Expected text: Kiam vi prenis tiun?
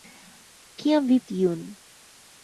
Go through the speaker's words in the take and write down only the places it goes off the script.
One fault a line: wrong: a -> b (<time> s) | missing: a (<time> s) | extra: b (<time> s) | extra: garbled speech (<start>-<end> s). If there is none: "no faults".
missing: prenis (1.2 s)